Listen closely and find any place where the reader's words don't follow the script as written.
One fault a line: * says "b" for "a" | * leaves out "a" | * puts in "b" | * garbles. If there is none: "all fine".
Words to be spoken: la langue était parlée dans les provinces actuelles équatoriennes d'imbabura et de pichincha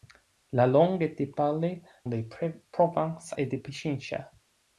* leaves out "dans"
* leaves out "actuelles équatoriennes d'imbabura"